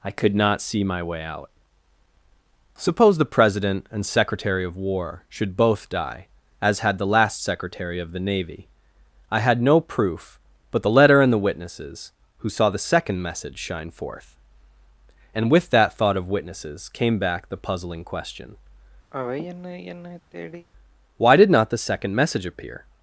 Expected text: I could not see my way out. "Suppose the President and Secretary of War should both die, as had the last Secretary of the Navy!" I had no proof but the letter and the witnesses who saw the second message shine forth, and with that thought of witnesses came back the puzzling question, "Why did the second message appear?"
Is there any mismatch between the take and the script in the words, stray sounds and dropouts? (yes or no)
yes